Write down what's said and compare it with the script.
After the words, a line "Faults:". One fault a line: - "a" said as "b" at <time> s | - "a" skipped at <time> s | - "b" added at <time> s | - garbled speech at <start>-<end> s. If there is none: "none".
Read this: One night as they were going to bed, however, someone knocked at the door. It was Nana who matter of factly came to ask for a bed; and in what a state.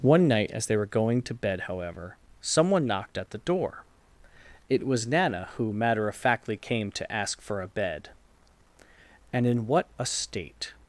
One night as they were going to bed, however, someone knocked at the door. It was Nana who matter of factly came to ask for a bed; and in what a state.
Faults:
none